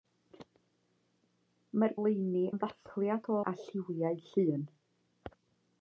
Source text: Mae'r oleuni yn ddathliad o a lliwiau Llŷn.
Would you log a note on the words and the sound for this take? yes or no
no